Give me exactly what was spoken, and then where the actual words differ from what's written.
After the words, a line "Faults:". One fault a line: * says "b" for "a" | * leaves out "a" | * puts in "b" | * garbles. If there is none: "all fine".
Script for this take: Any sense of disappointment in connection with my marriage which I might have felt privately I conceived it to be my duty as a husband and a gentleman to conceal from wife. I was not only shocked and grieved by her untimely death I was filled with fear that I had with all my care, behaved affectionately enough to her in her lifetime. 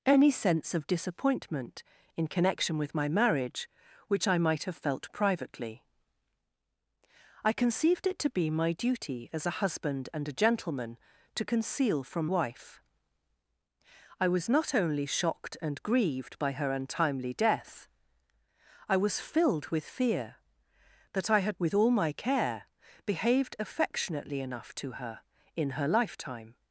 Any sense of disappointment in connection with my marriage which I might have felt privately I conceived it to be my duty as a husband and a gentleman to conceal from wife. I was not only shocked and grieved by her untimely death I was filled with fear that I had with all my care, behaved affectionately enough to her in her lifetime.
Faults:
all fine